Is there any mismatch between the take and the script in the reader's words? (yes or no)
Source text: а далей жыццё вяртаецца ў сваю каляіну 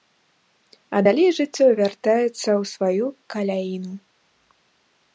no